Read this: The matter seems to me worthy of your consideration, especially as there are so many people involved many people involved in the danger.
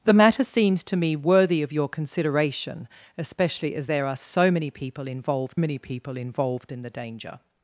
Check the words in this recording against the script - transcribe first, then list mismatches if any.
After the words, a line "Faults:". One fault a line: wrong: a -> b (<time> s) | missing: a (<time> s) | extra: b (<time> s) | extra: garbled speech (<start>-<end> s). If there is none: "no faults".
The matter seems to me worthy of your consideration, especially as there are so many people involved many people involved in the danger.
Faults:
no faults